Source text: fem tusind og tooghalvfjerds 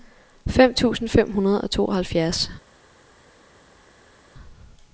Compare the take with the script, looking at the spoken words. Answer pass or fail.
fail